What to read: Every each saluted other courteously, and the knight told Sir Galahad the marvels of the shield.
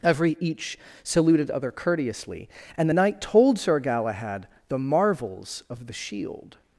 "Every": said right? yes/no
yes